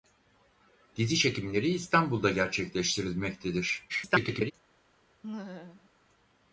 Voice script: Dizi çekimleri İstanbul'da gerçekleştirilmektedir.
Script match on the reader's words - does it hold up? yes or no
no